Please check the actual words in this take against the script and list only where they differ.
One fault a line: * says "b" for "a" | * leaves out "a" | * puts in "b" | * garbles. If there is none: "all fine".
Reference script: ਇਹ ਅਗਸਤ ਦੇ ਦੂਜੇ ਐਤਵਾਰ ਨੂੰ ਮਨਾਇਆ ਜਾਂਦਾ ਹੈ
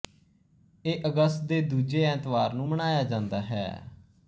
all fine